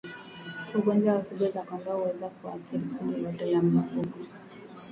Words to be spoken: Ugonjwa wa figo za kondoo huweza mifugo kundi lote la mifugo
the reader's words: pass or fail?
fail